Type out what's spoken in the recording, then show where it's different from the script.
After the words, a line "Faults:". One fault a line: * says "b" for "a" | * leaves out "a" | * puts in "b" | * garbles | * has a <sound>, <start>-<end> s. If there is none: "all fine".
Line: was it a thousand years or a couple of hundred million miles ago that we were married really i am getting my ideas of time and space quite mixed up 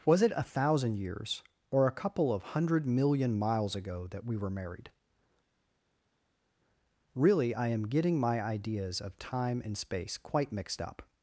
was it a thousand years or a couple of hundred million miles ago that we were married really i am getting my ideas of time and space quite mixed up
Faults:
all fine